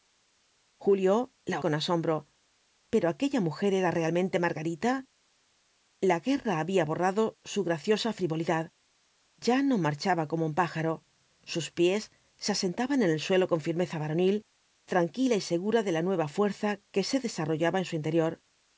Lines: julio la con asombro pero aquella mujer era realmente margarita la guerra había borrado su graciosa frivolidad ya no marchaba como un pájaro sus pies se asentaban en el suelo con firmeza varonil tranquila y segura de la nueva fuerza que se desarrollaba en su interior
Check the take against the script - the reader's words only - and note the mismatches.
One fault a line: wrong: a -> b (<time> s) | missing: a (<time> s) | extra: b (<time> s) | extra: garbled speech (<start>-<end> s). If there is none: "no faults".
no faults